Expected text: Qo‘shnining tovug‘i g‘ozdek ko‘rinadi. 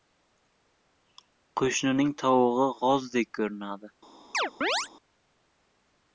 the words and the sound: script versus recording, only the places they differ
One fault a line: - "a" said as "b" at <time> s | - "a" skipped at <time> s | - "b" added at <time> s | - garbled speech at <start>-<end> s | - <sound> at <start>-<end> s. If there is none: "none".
- chirp at 4.3-4.9 s